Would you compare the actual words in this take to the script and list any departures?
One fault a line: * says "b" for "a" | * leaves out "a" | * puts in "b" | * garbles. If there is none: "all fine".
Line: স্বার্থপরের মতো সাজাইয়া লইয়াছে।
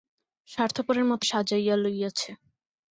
all fine